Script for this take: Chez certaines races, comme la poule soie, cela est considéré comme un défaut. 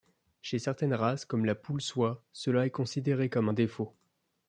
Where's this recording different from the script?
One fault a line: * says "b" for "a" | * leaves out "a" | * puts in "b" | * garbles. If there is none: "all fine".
all fine